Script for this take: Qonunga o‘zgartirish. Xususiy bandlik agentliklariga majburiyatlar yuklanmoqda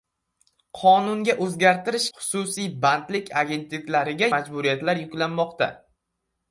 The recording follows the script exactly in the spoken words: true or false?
true